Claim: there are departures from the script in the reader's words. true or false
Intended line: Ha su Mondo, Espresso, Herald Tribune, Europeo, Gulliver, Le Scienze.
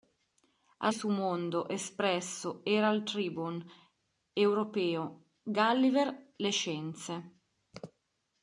false